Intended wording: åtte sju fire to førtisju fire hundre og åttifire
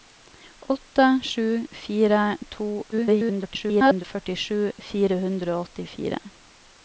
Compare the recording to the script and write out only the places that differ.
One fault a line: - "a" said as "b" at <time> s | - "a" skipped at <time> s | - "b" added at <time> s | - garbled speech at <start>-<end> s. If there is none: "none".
- garbled speech at 2.9-4.0 s